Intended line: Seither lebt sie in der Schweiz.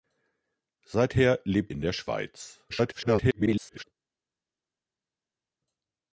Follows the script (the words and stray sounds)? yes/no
no